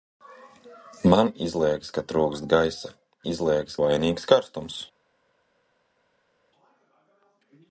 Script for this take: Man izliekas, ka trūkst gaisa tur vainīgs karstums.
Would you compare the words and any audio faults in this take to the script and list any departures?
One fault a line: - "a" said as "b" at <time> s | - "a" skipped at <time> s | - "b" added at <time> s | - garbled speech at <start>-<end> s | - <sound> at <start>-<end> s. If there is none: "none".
- "tur" said as "izliekas" at 3.3 s